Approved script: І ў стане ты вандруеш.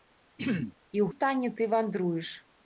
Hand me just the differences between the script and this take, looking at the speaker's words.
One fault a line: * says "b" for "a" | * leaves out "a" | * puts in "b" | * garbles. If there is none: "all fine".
all fine